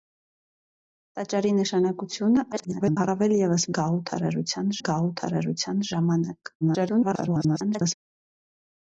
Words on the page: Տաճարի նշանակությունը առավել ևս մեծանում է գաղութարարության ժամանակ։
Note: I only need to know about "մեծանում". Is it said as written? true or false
false